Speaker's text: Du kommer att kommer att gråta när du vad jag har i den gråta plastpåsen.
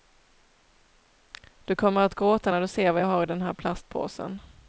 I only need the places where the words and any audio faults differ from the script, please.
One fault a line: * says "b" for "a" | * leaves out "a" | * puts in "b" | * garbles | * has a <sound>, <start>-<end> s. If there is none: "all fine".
* leaves out "kommer att"
* puts in "ser"
* says "här" for "gråta"